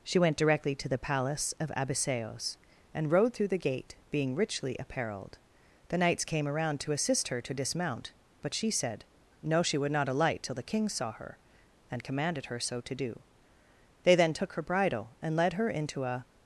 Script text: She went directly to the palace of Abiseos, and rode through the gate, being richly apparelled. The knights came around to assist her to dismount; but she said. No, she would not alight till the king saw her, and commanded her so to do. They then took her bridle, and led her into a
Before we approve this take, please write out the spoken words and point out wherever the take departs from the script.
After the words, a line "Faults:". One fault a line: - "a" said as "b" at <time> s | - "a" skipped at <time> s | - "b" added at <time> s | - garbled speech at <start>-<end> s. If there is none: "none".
She went directly to the palace of Abiseos, and rode through the gate, being richly apparelled. The knights came around to assist her to dismount; but she said. No, she would not alight till the king saw her, and commanded her so to do. They then took her bridle, and led her into a
Faults:
none